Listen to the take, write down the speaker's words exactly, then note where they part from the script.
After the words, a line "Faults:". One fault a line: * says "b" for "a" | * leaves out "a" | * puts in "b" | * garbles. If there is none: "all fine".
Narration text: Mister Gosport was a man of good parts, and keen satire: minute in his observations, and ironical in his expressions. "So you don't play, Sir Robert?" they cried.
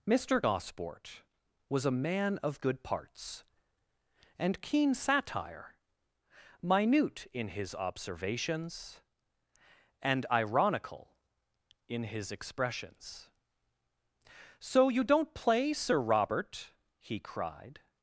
Mister Gosport was a man of good parts, and keen satire: minute in his observations, and ironical in his expressions. "So you don't play, Sir Robert?" he cried.
Faults:
* says "he" for "they"